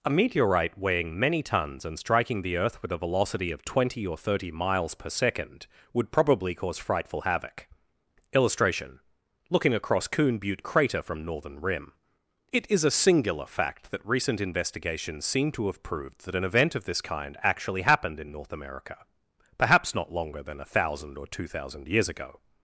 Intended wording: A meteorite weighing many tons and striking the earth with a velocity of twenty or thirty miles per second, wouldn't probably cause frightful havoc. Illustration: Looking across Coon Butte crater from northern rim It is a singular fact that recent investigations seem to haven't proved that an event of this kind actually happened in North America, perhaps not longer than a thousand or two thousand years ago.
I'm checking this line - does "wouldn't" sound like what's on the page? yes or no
no